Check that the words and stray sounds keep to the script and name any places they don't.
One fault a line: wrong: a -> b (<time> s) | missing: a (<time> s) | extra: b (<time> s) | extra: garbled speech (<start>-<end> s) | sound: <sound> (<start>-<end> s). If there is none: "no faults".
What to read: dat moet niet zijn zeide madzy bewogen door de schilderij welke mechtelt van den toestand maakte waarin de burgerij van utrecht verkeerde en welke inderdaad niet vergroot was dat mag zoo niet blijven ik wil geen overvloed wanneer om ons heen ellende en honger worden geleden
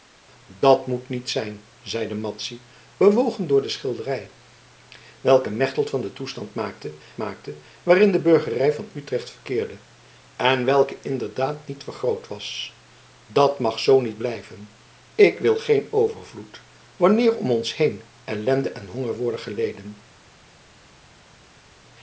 extra: maakte (7.2 s)